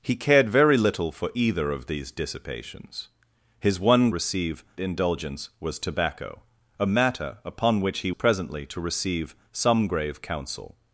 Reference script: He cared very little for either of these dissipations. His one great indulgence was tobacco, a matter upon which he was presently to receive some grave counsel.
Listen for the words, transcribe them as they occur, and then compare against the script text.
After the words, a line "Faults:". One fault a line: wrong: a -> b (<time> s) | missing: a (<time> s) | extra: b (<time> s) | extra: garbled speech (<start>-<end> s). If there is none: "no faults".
He cared very little for either of these dissipations. His one receive indulgence was tobacco, a matter upon which he presently to receive some grave counsel.
Faults:
wrong: great -> receive (4.1 s)
missing: was (8.1 s)